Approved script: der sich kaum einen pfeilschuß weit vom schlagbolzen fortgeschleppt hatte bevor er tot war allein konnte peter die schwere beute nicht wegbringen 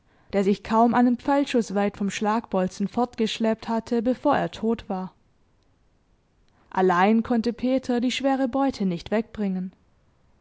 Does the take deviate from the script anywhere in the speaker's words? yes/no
no